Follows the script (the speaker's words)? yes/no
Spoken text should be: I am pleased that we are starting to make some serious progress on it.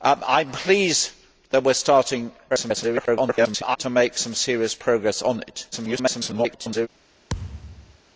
no